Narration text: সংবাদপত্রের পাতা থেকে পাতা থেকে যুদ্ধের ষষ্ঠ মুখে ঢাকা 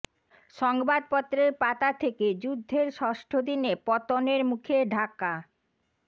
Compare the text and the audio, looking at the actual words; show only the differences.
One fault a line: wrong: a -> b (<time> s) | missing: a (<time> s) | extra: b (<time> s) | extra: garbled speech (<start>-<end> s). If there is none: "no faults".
wrong: পাতা থেকে যুদ্ধের ষষ্ঠ -> যুদ্ধের ষষ্ঠ দিনে পতনের (2.4 s)